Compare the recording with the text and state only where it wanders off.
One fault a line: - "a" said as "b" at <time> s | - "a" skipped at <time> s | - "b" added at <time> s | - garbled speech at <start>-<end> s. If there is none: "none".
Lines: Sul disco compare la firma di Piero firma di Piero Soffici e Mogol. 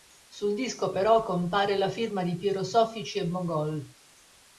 - "però" added at 0.9 s
- "firma di Piero" skipped at 2.6 s